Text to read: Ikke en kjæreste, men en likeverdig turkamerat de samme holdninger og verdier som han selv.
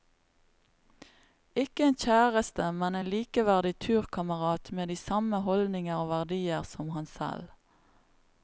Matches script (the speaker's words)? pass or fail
fail